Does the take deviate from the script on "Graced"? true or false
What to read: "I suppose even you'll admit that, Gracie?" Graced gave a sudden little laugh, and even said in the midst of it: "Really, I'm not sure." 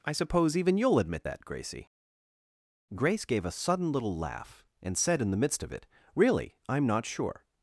true